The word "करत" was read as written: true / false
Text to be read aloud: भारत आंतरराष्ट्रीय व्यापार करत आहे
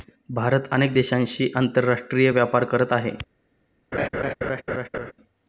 true